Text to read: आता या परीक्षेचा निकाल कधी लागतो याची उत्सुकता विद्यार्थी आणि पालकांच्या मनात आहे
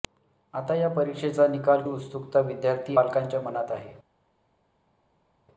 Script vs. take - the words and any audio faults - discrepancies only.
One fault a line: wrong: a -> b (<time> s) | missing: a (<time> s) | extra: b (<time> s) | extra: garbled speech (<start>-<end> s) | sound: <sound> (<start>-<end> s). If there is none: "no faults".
missing: कधी लागतो याची (1.8 s)
missing: आणि (3.0 s)